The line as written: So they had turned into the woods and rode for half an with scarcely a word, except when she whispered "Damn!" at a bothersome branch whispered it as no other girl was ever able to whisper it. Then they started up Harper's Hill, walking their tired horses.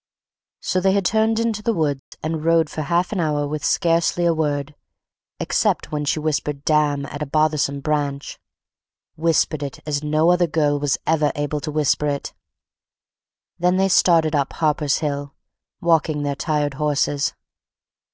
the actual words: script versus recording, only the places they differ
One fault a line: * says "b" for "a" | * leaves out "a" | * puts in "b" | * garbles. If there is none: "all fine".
* puts in "hour"